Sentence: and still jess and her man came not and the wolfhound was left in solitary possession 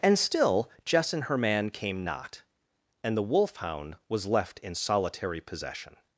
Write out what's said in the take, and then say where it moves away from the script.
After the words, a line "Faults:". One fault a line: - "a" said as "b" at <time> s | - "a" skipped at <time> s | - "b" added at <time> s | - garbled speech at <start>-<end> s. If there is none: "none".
and still jess and her man came not and the wolfhound was left in solitary possession
Faults:
none